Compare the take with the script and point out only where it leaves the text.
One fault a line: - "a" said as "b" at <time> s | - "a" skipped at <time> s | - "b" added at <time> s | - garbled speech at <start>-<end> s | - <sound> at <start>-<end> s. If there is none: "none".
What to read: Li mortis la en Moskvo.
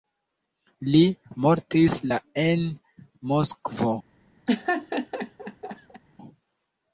- laugh at 4.5-6.0 s